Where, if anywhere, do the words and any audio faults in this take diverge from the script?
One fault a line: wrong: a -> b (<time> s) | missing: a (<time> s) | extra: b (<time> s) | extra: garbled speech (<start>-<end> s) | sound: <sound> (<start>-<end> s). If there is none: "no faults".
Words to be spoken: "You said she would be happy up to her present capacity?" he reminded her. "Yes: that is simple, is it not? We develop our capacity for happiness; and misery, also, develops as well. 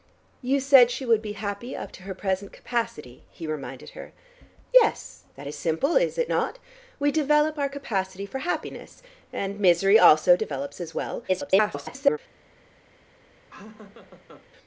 extra: garbled speech (11.3-12.2 s)
sound: laugh (13.5-14.5 s)